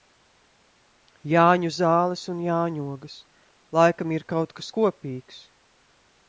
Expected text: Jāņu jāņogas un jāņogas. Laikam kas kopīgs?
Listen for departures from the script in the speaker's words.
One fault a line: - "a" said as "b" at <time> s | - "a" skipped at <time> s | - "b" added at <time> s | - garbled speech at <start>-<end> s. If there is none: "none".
- "jāņogas" said as "zāles" at 1.8 s
- "ir kaut" added at 4.2 s